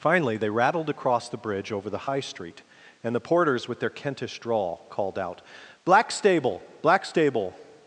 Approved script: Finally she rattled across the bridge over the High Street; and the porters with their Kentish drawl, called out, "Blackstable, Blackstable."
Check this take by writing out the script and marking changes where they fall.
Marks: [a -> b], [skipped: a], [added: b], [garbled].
Finally [she -> they] rattled across the bridge over the High Street; and the porters with their Kentish drawl, called out, "Blackstable, Blackstable."